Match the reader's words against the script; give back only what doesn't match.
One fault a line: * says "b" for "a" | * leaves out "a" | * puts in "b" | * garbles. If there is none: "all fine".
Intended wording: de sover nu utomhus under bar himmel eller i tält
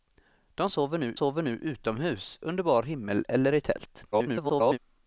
* puts in "sover nu"
* garbles